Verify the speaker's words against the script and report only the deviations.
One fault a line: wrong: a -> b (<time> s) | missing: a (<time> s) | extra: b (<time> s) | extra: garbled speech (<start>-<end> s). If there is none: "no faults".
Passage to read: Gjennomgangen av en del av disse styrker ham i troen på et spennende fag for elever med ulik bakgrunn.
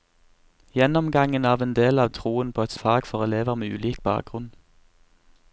missing: disse styrker ham (2.1 s)
missing: spennende (2.8 s)